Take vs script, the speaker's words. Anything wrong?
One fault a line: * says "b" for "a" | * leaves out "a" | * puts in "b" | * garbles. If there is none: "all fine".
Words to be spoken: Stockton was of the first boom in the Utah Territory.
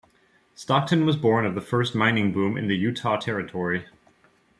* puts in "born"
* puts in "mining"